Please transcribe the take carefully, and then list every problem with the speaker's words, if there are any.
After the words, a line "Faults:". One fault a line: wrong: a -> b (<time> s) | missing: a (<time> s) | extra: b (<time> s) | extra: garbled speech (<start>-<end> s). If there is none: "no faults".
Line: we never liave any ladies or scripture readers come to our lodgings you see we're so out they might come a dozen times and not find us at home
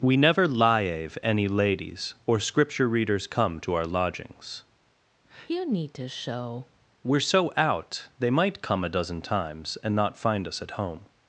we never liave any ladies or scripture readers come to our lodgings you need to show we're so out they might come a dozen times and not find us at home
Faults:
wrong: see -> need to show (5.6 s)